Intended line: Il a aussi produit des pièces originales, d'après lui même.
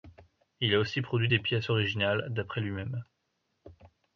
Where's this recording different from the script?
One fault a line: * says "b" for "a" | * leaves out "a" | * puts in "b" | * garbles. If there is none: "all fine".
all fine